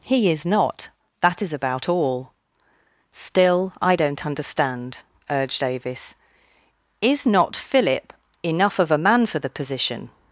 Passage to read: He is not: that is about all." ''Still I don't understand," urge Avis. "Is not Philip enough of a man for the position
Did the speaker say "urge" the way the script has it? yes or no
no